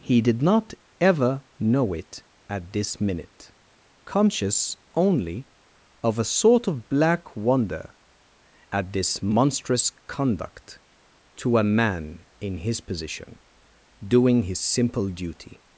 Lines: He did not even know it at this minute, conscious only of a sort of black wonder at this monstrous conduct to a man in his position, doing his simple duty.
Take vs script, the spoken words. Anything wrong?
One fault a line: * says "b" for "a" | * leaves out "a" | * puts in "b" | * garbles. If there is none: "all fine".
* says "ever" for "even"